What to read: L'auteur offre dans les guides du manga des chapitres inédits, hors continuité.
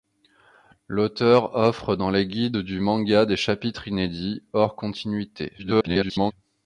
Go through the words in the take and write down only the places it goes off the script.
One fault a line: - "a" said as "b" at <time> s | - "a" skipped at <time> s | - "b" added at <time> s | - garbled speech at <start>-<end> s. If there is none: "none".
- garbled speech at 5.6-6.3 s